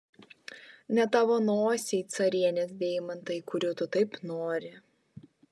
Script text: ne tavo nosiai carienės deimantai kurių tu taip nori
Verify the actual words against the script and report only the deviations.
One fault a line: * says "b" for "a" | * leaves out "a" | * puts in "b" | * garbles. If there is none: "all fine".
all fine